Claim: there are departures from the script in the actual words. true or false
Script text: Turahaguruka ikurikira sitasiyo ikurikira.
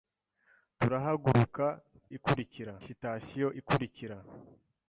false